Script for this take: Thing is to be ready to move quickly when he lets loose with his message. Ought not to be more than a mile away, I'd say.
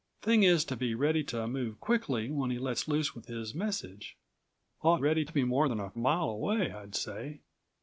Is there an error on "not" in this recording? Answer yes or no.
yes